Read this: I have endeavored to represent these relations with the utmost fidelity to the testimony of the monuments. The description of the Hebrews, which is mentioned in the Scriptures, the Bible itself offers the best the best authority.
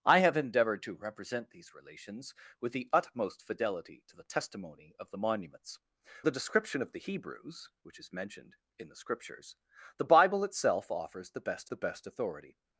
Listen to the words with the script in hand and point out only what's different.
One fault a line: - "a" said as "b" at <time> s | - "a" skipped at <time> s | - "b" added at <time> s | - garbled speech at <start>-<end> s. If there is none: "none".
none